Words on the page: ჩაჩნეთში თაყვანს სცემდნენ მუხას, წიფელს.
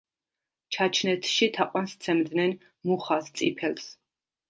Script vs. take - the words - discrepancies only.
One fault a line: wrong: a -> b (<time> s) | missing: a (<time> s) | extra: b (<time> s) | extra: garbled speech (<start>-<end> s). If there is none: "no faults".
no faults